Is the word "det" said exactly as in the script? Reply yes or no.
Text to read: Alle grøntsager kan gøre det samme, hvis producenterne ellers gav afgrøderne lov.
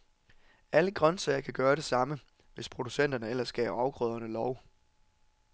yes